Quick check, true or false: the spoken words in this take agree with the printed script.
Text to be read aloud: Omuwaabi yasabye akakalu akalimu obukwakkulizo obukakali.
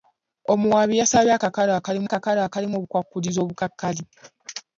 false